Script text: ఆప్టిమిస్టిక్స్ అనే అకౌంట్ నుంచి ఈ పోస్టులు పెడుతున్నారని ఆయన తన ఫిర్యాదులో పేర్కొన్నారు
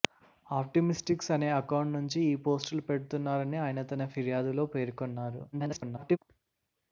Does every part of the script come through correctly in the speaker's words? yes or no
no